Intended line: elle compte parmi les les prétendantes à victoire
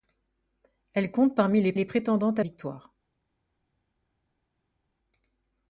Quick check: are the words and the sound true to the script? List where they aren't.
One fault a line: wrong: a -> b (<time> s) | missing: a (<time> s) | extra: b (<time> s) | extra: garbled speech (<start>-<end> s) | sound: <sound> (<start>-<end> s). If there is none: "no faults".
no faults